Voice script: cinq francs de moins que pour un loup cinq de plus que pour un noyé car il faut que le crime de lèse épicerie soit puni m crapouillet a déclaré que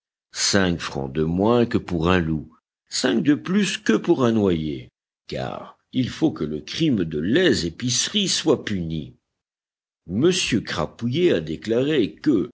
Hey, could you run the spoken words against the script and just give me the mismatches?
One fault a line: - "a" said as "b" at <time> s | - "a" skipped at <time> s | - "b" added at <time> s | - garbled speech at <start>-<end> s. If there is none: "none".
none